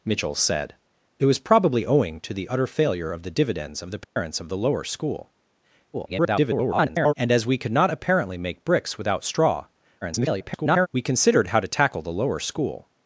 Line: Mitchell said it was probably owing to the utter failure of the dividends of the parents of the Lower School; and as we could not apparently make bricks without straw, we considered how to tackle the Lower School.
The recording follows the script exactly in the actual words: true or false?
false